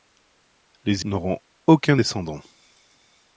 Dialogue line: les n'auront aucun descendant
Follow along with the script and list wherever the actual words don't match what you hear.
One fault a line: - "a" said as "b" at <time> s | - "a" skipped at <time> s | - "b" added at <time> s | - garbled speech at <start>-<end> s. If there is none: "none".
none